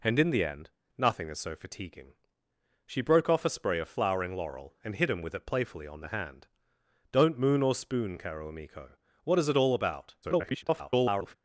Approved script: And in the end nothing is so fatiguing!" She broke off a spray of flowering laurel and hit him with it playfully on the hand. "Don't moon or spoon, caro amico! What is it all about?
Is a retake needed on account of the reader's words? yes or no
yes